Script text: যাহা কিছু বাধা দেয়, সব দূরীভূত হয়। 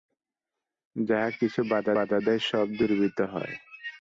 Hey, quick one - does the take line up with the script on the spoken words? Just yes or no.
no